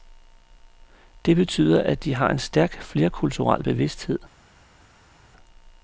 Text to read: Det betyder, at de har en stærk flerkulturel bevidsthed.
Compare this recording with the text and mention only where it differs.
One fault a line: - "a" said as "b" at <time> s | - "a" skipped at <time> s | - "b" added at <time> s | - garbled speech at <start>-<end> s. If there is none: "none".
none